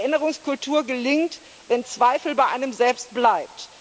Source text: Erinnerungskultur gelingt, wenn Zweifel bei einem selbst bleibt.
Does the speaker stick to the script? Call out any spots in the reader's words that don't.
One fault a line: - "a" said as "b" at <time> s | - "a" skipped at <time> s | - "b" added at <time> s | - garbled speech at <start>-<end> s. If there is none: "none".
none